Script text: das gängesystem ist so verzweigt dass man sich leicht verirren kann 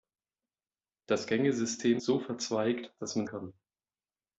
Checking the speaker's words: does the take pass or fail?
fail